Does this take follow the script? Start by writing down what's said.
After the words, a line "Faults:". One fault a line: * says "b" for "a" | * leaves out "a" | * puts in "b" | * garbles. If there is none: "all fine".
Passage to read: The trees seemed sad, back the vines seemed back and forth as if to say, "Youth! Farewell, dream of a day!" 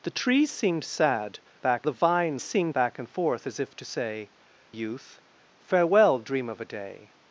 The trees seemed sad, back the vines seemed back and forth as if to say, "Youth! Farewell, dream of a day!"
Faults:
all fine